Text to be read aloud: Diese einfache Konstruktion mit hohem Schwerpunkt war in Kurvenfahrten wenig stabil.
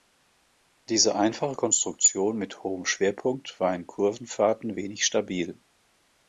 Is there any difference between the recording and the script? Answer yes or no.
no